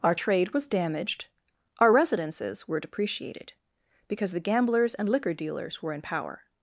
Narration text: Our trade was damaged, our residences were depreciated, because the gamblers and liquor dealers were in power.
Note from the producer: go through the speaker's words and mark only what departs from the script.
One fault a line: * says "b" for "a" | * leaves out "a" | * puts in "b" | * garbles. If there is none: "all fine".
all fine